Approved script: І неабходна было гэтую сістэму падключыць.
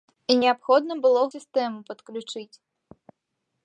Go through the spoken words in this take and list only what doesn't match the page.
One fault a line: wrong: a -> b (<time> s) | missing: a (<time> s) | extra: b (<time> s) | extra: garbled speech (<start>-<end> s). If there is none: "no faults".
missing: гэтую (1.2 s)